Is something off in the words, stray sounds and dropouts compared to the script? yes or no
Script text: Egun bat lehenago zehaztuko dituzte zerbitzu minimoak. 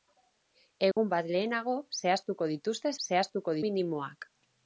yes